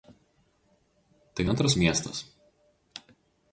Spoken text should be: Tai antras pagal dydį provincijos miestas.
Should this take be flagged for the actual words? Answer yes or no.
yes